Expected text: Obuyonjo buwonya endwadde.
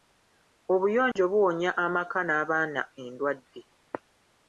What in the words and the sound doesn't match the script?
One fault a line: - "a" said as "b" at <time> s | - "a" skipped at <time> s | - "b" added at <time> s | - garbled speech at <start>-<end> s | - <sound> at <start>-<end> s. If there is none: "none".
- dropout at 1.1-1.2 s
- "amaka n'abaana" added at 1.9 s